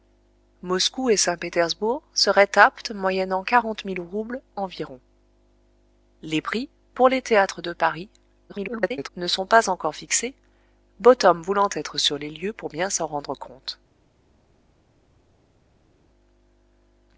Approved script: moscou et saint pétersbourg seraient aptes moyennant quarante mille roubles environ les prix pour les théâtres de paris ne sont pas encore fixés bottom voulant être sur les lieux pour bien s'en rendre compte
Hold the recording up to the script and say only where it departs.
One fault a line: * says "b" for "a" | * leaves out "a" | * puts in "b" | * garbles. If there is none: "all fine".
* garbles